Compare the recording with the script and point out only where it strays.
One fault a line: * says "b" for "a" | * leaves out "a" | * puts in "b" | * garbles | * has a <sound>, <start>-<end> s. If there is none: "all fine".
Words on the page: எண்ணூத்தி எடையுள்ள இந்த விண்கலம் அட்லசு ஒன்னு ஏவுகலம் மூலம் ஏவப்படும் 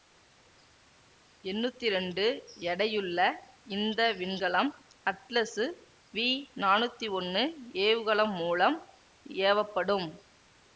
* puts in "இரண்டு"
* puts in "வி நானூத்தி"